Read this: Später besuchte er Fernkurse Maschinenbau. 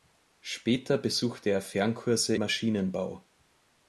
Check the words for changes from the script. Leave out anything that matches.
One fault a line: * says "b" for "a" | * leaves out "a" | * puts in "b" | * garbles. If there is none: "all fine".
all fine